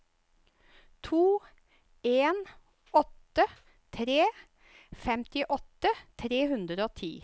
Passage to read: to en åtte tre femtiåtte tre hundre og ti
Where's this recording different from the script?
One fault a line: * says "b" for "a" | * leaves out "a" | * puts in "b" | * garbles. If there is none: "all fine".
all fine